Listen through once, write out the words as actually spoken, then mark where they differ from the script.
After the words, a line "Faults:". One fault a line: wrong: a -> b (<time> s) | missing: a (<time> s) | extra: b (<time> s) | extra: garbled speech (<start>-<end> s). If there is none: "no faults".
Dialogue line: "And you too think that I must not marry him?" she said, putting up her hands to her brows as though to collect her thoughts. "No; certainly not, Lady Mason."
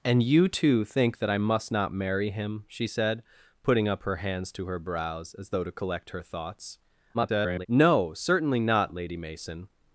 "And you too think that I must not marry him?" she said, putting up her hands to her brows as though to collect her thoughts. [garbled] "No; certainly not, Lady Mason."
Faults:
extra: garbled speech (7.1-7.7 s)